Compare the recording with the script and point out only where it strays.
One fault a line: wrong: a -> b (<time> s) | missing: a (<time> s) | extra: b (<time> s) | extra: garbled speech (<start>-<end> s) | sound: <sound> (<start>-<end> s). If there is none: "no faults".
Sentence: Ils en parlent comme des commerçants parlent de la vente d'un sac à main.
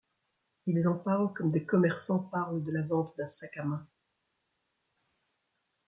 no faults